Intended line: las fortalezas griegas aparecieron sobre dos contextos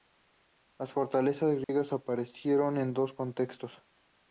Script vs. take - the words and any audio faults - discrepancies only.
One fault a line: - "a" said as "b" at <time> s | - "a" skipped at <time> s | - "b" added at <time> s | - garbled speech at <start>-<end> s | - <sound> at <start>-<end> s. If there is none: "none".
- dropout at 1.6-1.7 s
- "sobre" said as "en" at 2.8 s